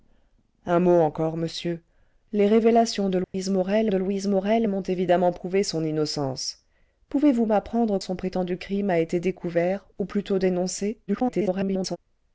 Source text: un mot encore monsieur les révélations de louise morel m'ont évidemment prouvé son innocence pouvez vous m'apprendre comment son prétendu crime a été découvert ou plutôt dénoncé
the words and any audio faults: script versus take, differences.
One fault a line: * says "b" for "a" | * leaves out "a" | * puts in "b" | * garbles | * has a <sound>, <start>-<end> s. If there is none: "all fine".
* has a dropout, 3.2-3.3 s
* puts in "de louise morel"
* leaves out "comment"
* garbles